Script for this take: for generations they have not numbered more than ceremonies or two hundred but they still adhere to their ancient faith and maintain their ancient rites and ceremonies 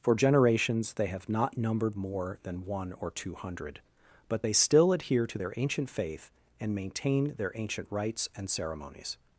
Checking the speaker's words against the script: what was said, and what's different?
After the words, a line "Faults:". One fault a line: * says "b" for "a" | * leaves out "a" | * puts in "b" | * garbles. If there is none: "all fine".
for generations they have not numbered more than one or two hundred but they still adhere to their ancient faith and maintain their ancient rites and ceremonies
Faults:
* says "one" for "ceremonies"